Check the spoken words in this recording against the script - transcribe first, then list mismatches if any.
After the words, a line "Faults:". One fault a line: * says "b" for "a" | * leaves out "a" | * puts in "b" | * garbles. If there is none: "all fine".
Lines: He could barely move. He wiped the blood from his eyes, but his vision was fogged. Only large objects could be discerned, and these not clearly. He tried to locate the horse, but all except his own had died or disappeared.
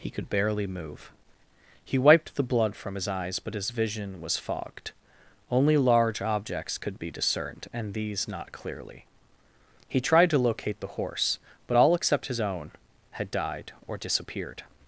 He could barely move. He wiped the blood from his eyes, but his vision was fogged. Only large objects could be discerned, and these not clearly. He tried to locate the horse, but all except his own had died or disappeared.
Faults:
all fine